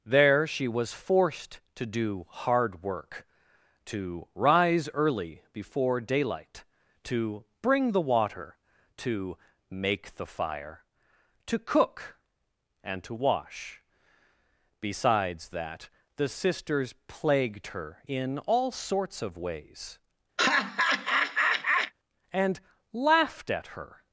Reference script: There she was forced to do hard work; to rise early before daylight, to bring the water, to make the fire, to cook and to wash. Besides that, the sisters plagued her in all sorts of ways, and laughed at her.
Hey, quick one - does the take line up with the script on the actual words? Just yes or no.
yes